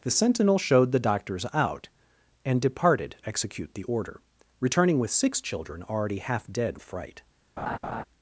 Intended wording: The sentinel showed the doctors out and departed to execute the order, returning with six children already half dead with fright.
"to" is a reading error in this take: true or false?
true